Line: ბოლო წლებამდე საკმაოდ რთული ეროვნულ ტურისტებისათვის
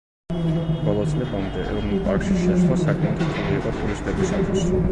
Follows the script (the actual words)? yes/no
no